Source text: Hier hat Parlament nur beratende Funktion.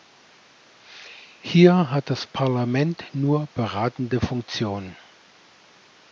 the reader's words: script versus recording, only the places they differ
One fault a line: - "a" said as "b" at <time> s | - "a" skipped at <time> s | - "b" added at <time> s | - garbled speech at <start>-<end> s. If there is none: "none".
- "das" added at 2.1 s